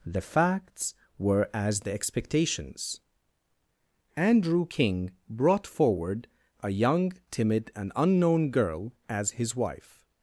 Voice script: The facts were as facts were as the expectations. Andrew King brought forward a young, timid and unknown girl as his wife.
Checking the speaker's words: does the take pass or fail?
fail